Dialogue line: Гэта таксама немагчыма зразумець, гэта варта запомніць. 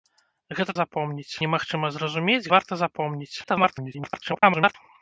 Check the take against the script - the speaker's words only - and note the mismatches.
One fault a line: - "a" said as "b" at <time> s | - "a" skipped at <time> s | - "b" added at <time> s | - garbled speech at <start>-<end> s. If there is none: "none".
- "таксама" said as "запомніць" at 0.8 s
- "гэта" skipped at 2.5 s
- garbled speech at 3.4-4.7 s